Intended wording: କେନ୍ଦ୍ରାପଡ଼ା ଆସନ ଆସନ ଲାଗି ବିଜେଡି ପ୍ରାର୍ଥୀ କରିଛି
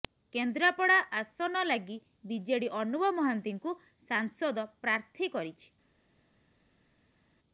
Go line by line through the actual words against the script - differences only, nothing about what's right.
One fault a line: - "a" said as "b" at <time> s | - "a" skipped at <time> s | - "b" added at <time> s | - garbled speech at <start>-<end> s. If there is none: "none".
- "ଆସନ" skipped at 1.6 s
- "ଅନୁଭବ ମହାନ୍ତିଙ୍କୁ ସାଂସଦ" added at 2.8 s